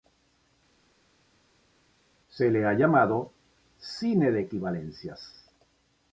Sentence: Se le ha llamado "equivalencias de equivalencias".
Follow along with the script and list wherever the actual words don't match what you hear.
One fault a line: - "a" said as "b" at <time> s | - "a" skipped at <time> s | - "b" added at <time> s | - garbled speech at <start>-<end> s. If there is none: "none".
- "equivalencias" said as "cine" at 3.8 s